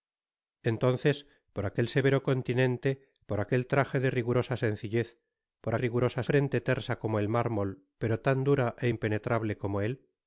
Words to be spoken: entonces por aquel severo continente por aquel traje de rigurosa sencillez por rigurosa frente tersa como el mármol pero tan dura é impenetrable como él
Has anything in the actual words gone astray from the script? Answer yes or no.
no